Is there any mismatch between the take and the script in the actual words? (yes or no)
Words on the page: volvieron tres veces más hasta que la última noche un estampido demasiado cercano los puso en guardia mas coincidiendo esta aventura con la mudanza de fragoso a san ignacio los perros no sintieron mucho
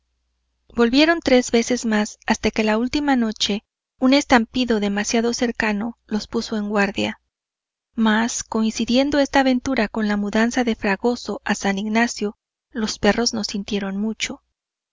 no